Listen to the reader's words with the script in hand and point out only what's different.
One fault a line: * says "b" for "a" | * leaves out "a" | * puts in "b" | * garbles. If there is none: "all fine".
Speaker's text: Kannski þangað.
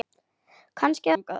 all fine